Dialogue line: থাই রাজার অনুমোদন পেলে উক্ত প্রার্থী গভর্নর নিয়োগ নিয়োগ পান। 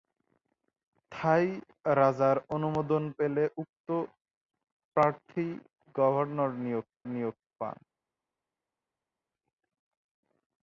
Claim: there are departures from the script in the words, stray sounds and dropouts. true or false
false